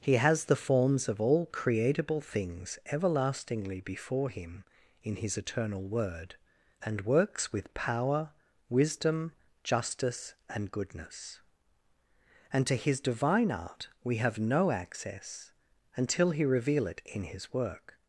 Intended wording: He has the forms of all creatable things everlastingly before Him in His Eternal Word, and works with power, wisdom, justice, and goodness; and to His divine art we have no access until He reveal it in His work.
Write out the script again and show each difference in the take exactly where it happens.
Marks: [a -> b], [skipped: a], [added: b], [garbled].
He has the forms of all creatable things everlastingly before Him in His Eternal Word, and works with power, wisdom, justice, and goodness; and to His divine art we have no access until He reveal it in His work.